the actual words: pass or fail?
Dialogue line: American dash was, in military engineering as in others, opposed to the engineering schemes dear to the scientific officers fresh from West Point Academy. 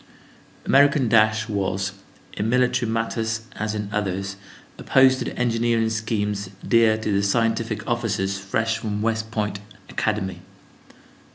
fail